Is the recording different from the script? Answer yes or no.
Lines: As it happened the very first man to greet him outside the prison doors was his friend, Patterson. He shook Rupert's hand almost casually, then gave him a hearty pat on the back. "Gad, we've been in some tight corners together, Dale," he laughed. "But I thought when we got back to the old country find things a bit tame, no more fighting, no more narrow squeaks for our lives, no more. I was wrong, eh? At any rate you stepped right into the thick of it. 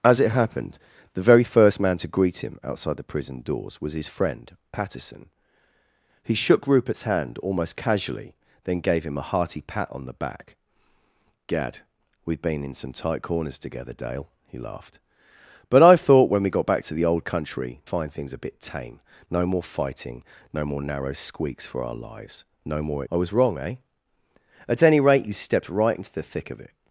no